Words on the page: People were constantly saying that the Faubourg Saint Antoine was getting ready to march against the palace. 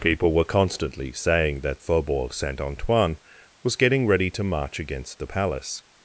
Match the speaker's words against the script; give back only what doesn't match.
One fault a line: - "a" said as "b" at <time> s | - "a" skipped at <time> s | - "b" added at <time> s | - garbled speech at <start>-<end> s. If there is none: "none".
- "the" skipped at 1.8 s